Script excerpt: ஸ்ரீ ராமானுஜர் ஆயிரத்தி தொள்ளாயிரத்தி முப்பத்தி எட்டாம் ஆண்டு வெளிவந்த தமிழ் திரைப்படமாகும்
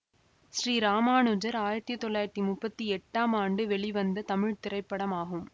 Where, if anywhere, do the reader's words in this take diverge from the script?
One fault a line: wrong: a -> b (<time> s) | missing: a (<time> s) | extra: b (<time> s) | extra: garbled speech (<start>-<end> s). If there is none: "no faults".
no faults